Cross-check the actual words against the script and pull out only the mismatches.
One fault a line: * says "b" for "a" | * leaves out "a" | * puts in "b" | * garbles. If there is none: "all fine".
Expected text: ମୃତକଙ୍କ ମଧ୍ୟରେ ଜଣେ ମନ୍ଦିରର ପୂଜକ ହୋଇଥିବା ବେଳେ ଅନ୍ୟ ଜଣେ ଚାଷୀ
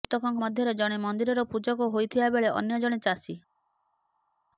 all fine